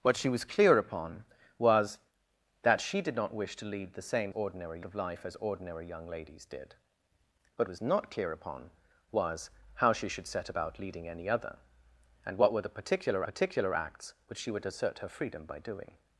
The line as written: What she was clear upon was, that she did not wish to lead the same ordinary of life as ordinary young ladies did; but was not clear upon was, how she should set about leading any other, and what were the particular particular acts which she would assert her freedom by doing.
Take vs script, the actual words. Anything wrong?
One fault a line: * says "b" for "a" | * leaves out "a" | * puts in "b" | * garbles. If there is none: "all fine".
all fine